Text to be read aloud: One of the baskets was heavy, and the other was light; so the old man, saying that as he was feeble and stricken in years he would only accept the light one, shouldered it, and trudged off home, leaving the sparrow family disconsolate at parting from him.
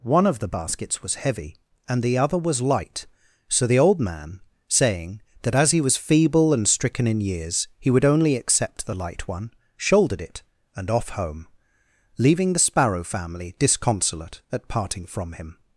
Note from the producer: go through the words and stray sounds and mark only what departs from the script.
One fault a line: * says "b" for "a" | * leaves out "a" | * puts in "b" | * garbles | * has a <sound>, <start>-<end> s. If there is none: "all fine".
* leaves out "trudged"